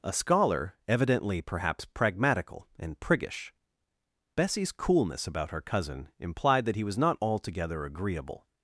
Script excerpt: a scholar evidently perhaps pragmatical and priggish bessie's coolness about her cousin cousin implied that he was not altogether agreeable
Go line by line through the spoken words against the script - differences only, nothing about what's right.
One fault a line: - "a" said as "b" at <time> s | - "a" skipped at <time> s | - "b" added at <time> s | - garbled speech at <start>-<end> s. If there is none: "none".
- "cousin" skipped at 6.1 s